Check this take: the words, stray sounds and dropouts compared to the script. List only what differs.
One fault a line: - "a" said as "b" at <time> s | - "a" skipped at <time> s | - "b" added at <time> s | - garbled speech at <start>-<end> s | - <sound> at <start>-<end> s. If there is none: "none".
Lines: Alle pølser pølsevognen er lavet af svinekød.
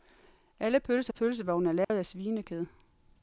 - dropout at 1.8-1.9 s